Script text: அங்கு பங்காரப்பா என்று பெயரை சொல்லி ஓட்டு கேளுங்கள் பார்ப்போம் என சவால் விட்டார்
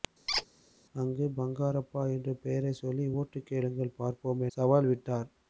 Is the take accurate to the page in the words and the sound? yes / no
no